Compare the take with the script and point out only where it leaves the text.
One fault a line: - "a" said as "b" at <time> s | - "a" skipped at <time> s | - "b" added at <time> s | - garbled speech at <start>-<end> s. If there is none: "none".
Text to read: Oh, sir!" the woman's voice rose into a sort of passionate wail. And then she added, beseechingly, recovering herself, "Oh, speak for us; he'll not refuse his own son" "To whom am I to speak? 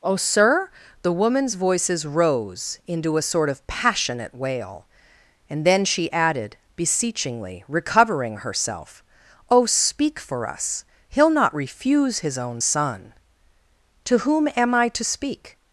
- "voice" said as "voices" at 1.6 s